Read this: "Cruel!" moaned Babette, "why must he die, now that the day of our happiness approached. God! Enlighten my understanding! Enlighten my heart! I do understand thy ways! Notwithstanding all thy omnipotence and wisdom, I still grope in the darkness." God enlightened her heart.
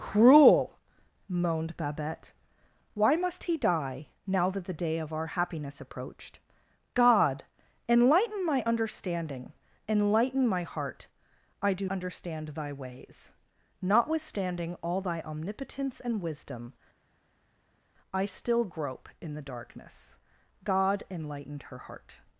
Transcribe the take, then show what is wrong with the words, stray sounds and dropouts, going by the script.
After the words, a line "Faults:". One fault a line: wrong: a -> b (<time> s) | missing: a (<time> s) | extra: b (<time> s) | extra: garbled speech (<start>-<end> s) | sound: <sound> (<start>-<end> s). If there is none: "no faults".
"Cruel!" moaned Babette, "why must he die, now that the day of our happiness approached. God! Enlighten my understanding! Enlighten my heart! I do understand thy ways! Notwithstanding all thy omnipotence and wisdom, I still grope in the darkness." God enlightened her heart.
Faults:
no faults